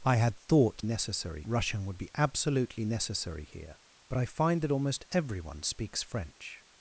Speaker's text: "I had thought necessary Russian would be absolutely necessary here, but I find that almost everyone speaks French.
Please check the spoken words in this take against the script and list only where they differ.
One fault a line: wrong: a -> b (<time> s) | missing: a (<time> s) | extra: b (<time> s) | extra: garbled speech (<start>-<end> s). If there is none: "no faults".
no faults